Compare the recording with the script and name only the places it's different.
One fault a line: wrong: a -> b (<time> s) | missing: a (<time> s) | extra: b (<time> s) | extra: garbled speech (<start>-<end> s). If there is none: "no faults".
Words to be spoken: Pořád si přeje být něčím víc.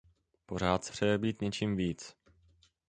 no faults